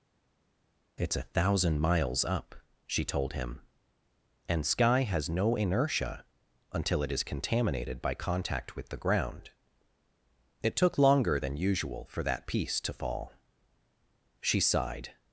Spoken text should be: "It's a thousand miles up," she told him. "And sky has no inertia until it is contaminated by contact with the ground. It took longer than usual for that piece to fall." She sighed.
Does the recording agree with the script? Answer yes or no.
yes